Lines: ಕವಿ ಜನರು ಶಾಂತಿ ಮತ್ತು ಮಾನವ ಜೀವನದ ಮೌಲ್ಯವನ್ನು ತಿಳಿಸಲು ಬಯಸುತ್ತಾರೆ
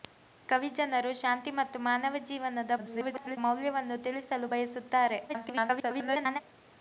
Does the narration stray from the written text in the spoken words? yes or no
yes